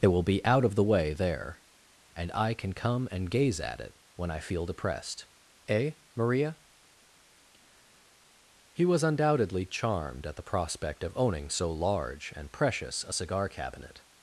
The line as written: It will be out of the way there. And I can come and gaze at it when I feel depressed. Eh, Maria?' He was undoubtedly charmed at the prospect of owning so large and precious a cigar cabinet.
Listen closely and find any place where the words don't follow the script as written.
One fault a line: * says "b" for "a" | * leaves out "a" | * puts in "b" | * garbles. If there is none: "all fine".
all fine